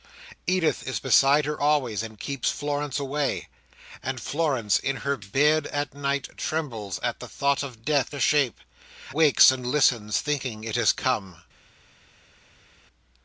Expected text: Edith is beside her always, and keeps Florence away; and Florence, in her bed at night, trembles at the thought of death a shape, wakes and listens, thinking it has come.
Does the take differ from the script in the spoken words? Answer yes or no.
no